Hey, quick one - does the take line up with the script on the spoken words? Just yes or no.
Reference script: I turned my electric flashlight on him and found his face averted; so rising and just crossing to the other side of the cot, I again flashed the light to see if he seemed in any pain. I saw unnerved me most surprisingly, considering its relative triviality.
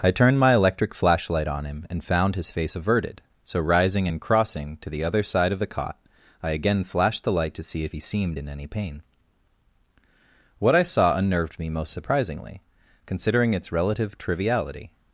no